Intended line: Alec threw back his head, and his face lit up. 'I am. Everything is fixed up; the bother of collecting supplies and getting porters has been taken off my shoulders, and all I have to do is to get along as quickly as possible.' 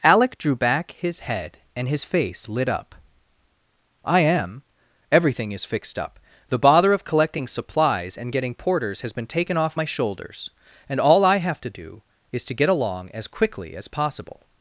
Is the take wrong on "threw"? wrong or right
wrong